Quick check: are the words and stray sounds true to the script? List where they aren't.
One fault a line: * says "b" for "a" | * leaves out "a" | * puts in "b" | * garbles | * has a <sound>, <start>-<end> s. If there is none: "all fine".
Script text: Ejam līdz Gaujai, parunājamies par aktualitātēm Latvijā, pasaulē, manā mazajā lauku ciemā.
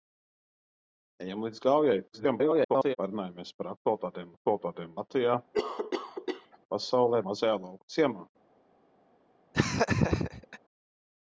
* garbles
* puts in "aktualitātēm"
* has a cough, 5.5-6.6 s
* leaves out "manā"
* has a laugh, 9.5-10.6 s